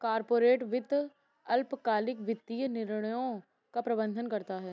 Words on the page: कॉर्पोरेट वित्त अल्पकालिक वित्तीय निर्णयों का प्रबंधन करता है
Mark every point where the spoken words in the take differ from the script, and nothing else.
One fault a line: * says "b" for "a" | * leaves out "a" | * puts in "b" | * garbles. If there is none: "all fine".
all fine